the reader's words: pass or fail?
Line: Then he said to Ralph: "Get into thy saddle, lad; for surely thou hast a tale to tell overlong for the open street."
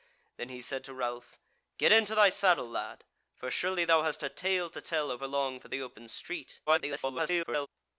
fail